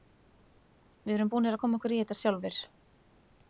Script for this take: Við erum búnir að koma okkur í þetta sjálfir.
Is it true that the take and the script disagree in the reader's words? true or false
false